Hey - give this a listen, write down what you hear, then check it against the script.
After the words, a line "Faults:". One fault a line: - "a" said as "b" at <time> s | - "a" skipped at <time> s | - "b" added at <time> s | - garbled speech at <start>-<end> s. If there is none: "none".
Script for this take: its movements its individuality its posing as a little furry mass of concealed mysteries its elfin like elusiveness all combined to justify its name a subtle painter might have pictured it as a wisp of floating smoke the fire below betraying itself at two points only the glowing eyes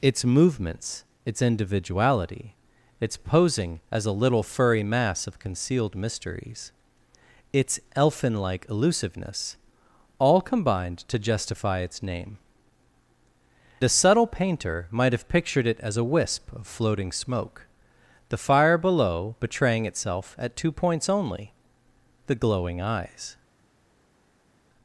its movements its individuality its posing as a little furry mass of concealed mysteries its elfin like elusiveness all combined to justify its name a subtle painter might have pictured it as a wisp of floating smoke the fire below betraying itself at two points only the glowing eyes
Faults:
none